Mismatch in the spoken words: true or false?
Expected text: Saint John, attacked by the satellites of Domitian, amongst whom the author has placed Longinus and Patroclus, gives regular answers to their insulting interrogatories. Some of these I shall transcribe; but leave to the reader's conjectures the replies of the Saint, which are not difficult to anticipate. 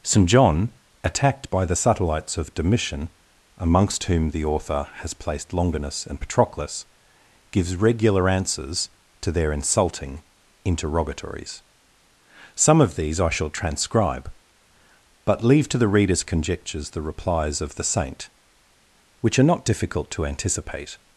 false